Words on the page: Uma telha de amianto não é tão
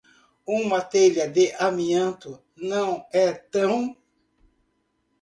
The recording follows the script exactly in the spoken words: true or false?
true